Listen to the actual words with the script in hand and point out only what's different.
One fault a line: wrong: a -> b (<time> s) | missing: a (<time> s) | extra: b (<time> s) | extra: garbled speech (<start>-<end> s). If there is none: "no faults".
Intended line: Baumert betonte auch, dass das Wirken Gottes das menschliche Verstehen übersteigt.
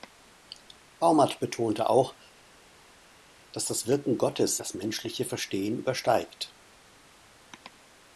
no faults